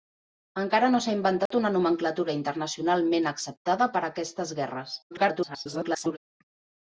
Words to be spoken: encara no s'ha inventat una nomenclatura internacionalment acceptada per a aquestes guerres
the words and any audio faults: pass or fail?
fail